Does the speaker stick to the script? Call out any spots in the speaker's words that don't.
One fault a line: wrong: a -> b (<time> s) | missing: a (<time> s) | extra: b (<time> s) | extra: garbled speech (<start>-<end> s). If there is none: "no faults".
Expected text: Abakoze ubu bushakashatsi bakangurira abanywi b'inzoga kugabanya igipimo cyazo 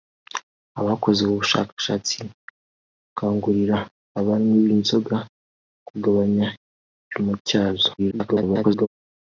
extra: garbled speech (8.0-8.9 s)